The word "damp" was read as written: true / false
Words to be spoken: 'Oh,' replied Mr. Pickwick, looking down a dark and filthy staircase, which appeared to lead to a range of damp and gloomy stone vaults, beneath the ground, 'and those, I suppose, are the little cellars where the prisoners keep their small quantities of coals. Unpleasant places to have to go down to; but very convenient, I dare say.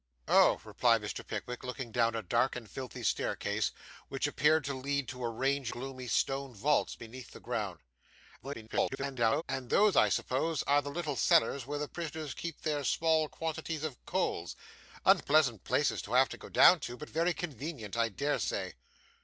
false